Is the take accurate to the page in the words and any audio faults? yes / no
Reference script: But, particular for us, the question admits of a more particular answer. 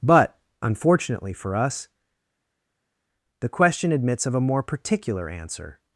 no